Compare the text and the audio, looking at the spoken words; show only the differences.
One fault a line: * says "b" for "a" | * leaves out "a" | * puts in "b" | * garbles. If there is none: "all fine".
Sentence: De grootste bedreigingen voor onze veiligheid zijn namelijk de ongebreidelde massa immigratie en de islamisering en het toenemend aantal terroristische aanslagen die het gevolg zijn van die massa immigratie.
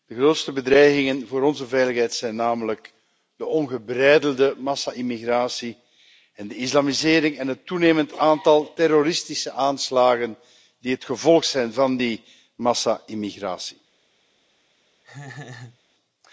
all fine